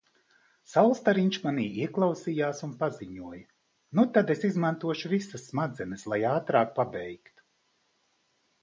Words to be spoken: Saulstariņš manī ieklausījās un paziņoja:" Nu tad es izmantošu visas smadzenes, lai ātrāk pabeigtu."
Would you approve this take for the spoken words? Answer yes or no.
yes